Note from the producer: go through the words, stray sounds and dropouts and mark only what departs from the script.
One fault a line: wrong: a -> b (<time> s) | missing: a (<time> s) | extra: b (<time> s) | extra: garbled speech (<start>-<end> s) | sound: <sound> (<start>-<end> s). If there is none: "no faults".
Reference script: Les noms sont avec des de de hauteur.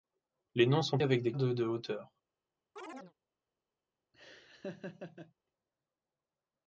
sound: chirp (2.8-3.1 s)
sound: laugh (4.1-5.3 s)